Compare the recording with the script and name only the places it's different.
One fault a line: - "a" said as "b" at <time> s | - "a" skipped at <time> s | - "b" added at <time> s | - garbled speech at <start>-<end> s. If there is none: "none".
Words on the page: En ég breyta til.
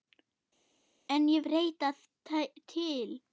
none